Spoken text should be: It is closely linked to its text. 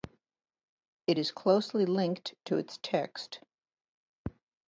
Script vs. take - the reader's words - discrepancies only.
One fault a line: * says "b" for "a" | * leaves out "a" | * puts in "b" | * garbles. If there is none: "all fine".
all fine